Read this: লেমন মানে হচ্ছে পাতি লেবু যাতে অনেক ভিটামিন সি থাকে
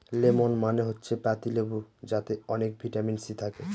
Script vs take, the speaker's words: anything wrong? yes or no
no